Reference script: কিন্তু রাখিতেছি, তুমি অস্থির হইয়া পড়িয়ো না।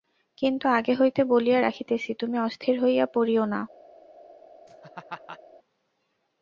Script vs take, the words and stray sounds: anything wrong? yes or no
yes